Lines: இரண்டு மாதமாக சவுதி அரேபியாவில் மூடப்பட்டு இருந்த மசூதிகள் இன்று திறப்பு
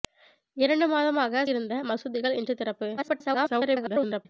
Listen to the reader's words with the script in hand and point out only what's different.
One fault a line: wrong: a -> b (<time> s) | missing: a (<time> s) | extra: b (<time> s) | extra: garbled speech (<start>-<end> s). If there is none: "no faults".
missing: சவுதி அரேபியாவில் மூடப்பட்டு (1.4 s)
extra: garbled speech (3.0-4.3 s)